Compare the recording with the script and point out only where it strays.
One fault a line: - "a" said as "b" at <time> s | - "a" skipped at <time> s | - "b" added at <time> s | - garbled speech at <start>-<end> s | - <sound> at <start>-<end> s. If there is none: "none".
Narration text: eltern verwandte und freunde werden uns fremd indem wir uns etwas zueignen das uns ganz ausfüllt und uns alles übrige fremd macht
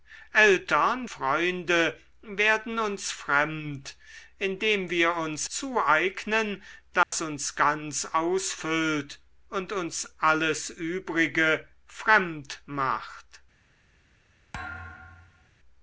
- "verwandte und" skipped at 1.1 s
- "etwas" skipped at 5.5 s
- dropout at 7.0-7.1 s
- thud at 14.5-15.5 s